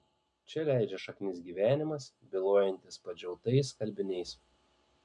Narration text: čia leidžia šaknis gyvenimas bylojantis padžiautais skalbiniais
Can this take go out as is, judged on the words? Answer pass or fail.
pass